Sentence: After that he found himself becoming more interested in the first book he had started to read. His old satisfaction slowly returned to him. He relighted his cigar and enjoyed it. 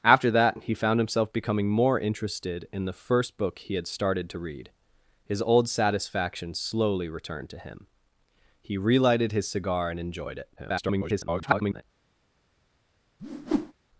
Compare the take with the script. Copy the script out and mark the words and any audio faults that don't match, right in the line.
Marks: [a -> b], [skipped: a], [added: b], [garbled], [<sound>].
After that he found himself becoming more interested in the first book he had started to read. His old satisfaction slowly returned to him. He relighted his cigar and enjoyed it. [garbled] [whoosh]